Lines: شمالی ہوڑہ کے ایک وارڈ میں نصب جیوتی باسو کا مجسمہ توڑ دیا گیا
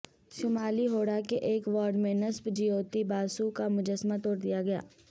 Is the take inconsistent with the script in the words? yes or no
no